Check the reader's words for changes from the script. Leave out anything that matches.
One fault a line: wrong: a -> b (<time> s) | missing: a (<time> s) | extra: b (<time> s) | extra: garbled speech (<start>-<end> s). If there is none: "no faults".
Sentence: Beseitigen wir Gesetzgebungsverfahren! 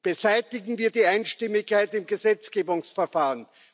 extra: die Einstimmigkeit im (0.9 s)